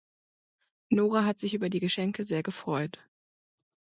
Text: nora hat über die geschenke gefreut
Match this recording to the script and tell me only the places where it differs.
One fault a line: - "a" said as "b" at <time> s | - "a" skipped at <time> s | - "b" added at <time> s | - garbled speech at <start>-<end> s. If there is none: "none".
- "sich" added at 1.4 s
- "sehr" added at 2.2 s